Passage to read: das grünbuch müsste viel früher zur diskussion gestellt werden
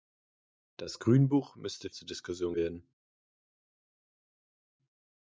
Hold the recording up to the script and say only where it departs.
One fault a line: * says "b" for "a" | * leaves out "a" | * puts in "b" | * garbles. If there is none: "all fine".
* leaves out "viel früher"
* leaves out "gestellt"